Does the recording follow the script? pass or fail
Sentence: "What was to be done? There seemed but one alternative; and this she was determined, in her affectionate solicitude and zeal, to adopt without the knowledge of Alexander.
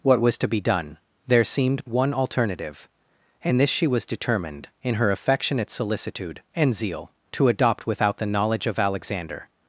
fail